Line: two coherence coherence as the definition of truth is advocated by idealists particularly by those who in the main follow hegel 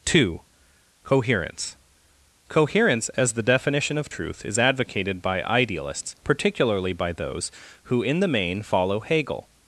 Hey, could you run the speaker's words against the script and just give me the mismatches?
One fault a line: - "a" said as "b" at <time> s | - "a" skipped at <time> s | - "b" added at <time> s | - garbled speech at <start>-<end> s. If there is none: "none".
none